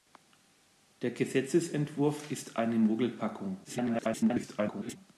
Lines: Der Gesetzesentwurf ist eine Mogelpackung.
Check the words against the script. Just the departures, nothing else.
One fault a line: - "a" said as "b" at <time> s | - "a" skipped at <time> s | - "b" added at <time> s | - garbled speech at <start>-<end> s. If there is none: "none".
- garbled speech at 3.6-5.0 s